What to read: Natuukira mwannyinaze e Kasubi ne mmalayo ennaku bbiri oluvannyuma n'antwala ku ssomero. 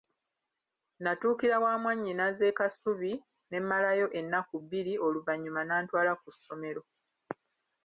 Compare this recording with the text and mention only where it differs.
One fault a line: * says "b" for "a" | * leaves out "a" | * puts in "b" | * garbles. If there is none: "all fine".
* puts in "wa"